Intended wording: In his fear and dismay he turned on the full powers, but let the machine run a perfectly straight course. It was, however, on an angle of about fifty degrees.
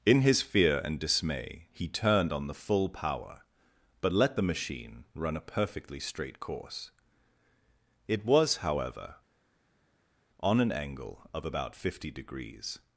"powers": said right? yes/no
no